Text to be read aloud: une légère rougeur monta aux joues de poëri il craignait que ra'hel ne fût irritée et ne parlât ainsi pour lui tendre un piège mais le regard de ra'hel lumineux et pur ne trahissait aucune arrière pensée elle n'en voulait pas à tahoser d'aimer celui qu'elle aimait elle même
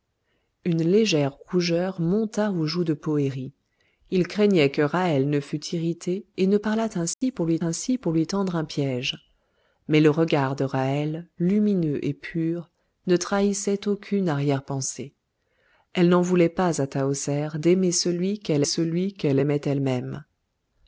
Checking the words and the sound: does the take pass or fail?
fail